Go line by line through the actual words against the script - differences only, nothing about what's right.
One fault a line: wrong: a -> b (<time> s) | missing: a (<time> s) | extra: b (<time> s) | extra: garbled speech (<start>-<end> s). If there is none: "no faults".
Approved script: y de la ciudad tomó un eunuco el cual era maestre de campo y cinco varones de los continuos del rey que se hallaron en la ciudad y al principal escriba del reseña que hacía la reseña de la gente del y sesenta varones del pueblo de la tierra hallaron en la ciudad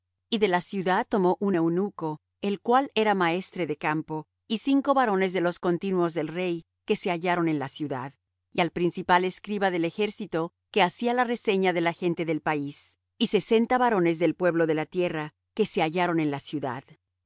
wrong: reseña -> ejército (9.9 s)
extra: país (12.4 s)
extra: que se (15.5 s)